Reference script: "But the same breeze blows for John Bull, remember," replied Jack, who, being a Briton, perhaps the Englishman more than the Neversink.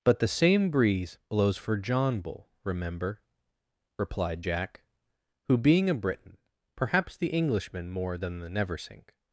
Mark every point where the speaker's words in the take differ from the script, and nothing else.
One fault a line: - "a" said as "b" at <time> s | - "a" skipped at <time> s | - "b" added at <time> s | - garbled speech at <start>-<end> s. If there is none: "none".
none